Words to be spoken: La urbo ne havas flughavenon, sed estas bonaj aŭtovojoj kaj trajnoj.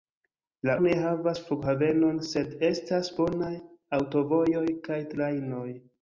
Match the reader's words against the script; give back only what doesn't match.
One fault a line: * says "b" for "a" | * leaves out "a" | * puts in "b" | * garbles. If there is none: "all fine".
* leaves out "urbo"